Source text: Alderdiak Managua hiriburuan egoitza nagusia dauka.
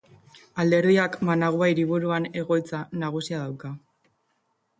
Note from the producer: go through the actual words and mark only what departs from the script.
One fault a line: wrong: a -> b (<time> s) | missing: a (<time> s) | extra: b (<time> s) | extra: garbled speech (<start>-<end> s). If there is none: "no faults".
no faults